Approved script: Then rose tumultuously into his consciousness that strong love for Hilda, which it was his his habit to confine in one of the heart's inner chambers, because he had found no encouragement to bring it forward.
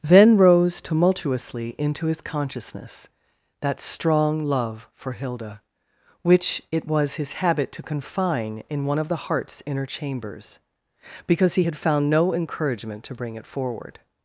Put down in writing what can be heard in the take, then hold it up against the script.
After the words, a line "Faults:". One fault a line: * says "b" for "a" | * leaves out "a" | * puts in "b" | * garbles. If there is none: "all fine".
Then rose tumultuously into his consciousness that strong love for Hilda, which it was his habit to confine in one of the heart's inner chambers, because he had found no encouragement to bring it forward.
Faults:
* leaves out "his"